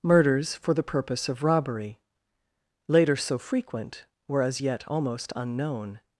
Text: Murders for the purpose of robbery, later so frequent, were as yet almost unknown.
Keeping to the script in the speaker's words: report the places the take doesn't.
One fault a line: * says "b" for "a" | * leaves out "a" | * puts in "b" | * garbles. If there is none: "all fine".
all fine